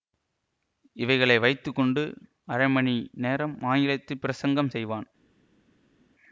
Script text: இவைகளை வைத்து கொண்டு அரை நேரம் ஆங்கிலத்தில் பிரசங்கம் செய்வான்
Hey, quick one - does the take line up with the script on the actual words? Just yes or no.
no